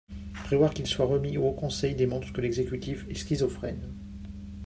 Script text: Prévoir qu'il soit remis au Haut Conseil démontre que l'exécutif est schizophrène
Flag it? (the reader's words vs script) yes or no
no